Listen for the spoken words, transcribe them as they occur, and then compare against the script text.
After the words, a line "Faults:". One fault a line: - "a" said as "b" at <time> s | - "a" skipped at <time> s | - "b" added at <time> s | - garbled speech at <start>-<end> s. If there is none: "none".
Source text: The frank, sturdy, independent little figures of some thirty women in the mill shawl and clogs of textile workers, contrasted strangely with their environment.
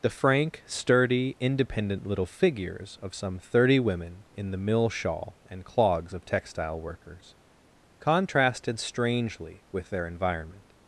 The frank, sturdy, independent little figures of some thirty women in the mill shawl and clogs of textile workers, contrasted strangely with their environment.
Faults:
none